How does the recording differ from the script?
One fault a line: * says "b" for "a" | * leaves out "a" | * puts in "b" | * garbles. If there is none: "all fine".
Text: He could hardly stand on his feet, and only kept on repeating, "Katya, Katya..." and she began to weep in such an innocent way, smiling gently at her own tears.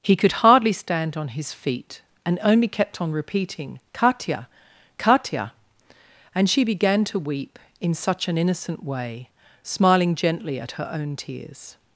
all fine